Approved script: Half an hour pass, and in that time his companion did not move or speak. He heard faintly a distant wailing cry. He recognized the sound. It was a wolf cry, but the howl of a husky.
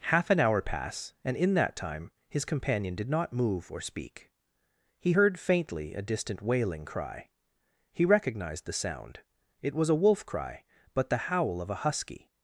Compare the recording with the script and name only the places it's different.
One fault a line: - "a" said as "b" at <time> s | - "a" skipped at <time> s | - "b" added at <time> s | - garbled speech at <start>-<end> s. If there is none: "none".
none